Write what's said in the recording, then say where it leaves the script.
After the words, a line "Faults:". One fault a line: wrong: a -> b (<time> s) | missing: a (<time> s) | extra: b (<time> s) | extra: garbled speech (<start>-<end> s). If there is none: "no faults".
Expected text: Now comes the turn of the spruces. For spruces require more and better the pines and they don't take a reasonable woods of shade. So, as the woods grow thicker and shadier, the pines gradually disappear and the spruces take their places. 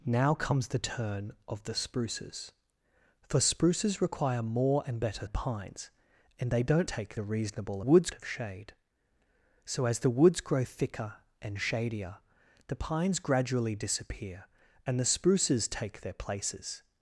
Now comes the turn of the spruces. For spruces require more and better the pines and they don't take a reasonable woods of shade. So, as the woods grow thicker and shadier, the pines gradually disappear and the spruces take their places.
Faults:
no faults